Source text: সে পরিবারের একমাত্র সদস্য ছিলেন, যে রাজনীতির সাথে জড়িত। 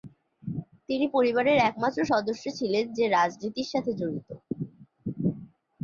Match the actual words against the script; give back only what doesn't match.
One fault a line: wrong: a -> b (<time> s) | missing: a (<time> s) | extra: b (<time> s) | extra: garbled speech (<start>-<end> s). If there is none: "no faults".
wrong: সে -> তিনি (0.9 s)